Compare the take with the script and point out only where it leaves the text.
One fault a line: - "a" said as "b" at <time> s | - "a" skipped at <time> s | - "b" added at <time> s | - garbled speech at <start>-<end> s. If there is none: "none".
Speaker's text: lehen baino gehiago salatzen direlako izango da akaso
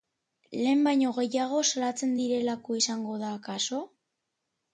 none